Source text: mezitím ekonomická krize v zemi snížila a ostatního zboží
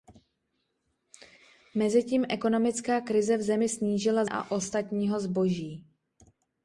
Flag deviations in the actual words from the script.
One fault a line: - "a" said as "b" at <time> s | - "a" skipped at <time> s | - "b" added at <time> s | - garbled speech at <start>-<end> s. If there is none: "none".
none